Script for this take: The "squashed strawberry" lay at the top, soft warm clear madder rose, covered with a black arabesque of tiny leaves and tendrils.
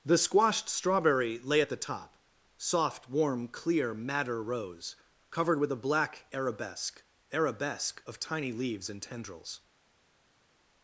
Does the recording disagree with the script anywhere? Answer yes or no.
yes